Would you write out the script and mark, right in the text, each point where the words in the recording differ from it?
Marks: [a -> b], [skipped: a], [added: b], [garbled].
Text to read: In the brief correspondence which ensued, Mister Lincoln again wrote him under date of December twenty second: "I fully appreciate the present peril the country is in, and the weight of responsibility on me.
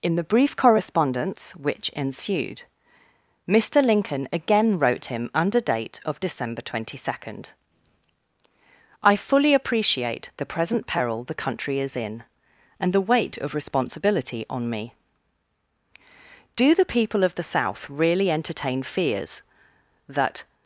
In the brief correspondence which ensued, Mister Lincoln again wrote him under date of December twenty second: "I fully appreciate the present peril the country is in, and the weight of responsibility on me. [added: Do the people of the South really entertain fears that]